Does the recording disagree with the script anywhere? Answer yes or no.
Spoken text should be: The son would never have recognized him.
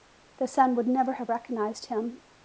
no